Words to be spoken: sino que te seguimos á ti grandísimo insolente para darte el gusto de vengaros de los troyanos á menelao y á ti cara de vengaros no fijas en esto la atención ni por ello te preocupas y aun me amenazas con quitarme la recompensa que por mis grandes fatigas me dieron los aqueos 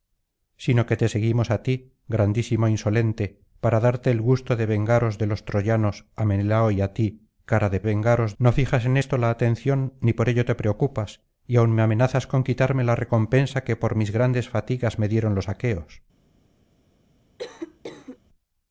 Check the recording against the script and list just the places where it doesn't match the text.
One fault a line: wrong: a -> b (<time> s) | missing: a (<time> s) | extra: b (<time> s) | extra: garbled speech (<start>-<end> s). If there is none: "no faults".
no faults